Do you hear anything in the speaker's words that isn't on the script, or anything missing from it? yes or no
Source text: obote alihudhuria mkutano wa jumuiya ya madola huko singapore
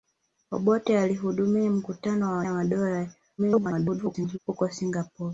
yes